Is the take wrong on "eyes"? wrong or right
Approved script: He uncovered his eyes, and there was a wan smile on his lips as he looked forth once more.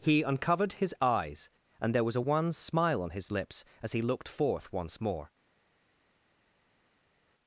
right